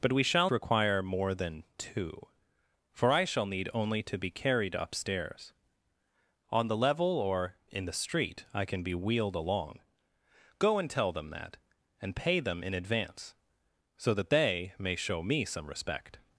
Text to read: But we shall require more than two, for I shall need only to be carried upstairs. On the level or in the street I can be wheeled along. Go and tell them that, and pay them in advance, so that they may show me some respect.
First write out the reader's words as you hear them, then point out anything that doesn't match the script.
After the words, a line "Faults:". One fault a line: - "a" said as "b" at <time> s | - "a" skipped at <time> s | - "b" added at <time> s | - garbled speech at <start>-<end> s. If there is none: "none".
But we shall require more than two, for I shall need only to be carried upstairs. On the level or in the street I can be wheeled along. Go and tell them that, and pay them in advance, so that they may show me some respect.
Faults:
none